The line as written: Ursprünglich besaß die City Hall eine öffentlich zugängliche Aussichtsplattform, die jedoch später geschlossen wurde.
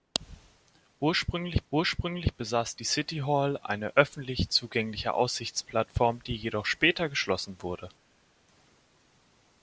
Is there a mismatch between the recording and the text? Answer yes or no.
yes